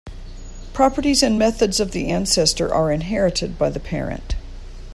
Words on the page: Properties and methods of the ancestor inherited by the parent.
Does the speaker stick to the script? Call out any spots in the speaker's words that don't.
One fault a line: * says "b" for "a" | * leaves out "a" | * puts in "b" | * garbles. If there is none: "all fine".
* puts in "are"